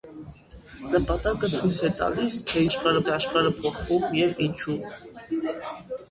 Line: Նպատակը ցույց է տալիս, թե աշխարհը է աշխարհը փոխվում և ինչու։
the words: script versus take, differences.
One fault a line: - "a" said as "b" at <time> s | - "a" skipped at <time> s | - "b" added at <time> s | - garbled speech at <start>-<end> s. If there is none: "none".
none